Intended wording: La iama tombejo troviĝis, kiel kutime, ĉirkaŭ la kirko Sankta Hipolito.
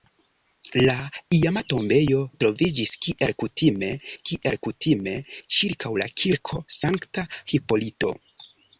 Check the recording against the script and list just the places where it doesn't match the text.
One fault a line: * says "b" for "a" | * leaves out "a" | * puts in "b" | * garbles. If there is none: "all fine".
* puts in "kiel kutime"